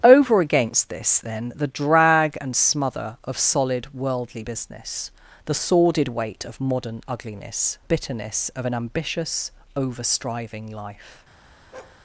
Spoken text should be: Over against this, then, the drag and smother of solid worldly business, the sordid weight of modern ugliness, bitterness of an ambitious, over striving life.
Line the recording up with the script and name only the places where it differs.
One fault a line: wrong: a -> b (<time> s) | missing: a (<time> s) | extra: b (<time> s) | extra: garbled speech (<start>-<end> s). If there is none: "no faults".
no faults